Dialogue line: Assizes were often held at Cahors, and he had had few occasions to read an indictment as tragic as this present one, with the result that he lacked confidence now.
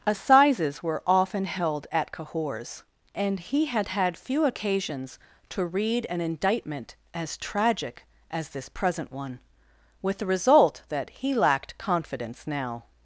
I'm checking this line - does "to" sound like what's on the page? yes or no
yes